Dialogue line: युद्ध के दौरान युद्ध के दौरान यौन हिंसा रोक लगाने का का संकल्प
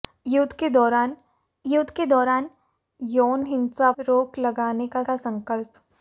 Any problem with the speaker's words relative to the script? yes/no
no